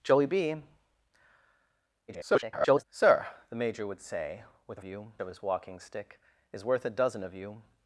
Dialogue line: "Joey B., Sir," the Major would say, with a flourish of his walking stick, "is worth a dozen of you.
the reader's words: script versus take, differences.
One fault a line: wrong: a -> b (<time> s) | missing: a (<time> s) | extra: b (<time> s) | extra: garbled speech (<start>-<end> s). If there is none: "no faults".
extra: garbled speech (2.1-2.8 s)
wrong: flourish -> you (4.8 s)